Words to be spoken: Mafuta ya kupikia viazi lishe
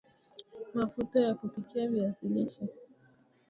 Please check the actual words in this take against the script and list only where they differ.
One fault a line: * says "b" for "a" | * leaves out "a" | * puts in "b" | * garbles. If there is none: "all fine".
all fine